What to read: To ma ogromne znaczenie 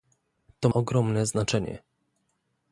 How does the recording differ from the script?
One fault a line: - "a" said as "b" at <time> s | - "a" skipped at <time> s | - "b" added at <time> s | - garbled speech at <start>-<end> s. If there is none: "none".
- "ma" skipped at 0.7 s